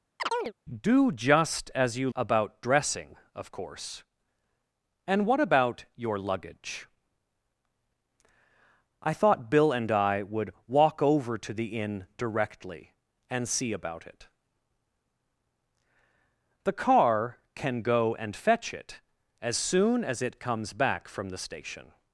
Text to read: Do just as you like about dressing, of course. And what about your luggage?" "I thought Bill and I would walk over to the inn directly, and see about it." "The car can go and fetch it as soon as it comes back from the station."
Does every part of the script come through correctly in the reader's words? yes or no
no